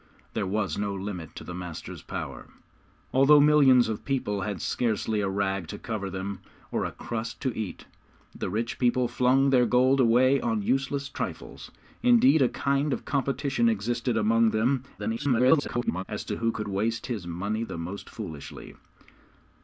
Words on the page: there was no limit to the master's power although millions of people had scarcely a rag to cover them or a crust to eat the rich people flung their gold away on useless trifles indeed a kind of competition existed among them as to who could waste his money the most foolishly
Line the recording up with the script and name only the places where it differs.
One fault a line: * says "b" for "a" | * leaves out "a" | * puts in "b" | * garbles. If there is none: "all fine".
* garbles